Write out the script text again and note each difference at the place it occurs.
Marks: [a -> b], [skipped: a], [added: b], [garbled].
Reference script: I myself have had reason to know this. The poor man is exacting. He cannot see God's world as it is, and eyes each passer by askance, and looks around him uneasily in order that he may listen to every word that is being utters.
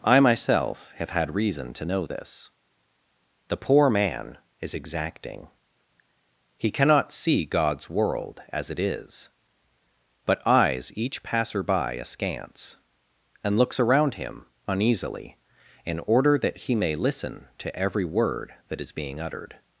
I myself have had reason to know this. The poor man is exacting. He cannot see God's world as it is, [and -> but] eyes each passer by askance, and looks around him uneasily in order that he may listen to every word that is being [utters. -> uttered]